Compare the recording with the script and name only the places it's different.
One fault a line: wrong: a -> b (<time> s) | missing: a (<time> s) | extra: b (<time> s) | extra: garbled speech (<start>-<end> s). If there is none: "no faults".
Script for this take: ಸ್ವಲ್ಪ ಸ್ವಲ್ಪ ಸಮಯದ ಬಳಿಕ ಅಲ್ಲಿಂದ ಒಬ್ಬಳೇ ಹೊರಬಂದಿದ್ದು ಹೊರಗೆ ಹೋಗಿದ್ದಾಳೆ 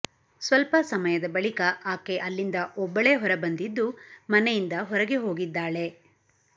missing: ಸ್ವಲ್ಪ (0.8 s)
extra: ಆಕೆ (1.9 s)
extra: ಮನೆಯಿಂದ (4.3 s)